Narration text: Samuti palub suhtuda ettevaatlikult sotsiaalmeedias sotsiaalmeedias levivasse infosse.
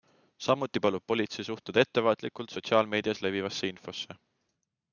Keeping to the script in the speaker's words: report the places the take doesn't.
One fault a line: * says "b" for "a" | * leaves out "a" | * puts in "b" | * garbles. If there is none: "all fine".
* puts in "politsei"
* leaves out "sotsiaalmeedias"